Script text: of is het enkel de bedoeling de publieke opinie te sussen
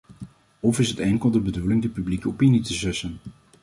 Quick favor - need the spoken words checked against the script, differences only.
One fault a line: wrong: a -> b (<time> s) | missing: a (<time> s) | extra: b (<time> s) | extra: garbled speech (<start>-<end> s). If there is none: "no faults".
no faults